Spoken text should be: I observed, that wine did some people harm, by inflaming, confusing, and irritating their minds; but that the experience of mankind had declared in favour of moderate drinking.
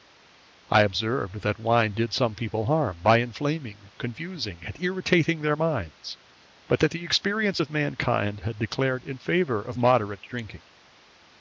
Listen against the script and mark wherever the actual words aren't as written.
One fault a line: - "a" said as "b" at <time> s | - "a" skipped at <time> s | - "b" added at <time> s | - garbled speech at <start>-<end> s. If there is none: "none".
none